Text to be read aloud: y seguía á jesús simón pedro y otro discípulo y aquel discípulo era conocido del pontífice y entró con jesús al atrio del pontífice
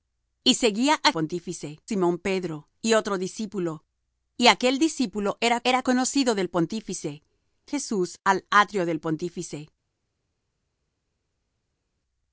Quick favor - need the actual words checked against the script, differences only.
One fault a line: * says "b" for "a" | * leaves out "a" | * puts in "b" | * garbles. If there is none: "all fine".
* says "pontífice" for "jesús"
* puts in "era"
* leaves out "y entró con"